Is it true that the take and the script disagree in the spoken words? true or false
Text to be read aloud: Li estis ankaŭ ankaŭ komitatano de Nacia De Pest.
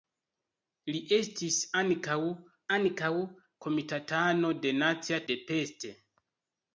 false